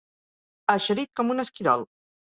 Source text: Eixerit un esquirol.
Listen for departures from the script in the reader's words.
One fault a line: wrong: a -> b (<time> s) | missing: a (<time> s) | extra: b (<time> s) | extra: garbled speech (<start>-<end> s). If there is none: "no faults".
extra: com (1.2 s)